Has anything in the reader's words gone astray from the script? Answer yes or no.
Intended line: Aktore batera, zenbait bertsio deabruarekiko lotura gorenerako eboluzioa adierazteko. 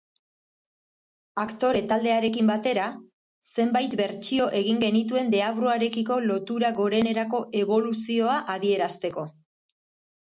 yes